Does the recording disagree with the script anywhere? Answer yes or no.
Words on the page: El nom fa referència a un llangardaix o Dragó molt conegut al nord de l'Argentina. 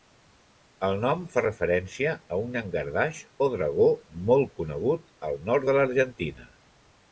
no